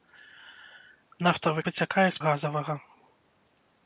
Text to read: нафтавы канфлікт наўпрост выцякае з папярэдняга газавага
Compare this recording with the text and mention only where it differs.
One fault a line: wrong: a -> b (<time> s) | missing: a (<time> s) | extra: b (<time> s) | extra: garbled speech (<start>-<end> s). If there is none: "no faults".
missing: канфлікт наўпрост (1.6 s)
missing: папярэдняга (2.2 s)